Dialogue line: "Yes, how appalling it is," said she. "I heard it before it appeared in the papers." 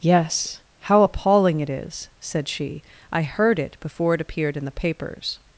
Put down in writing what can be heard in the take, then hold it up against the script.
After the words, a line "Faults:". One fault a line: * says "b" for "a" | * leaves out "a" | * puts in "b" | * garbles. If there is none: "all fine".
"Yes, how appalling it is," said she. "I heard it before it appeared in the papers."
Faults:
all fine